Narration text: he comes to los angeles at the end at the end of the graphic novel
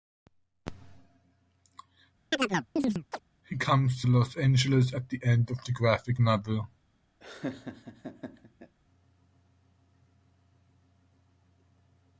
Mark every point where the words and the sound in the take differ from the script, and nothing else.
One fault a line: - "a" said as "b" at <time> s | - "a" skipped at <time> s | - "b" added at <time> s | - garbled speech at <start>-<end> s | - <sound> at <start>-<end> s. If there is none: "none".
- chirp at 2.3-3.2 s
- "at the end" skipped at 5.5 s
- laugh at 7.2-8.8 s